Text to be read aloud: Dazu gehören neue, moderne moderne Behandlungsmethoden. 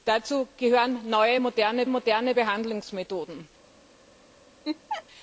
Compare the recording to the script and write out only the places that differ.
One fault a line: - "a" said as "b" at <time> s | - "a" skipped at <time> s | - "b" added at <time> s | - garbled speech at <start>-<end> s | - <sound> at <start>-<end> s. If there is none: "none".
- laugh at 4.6-5.0 s